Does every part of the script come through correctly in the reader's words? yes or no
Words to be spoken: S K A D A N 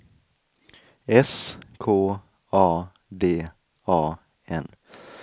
yes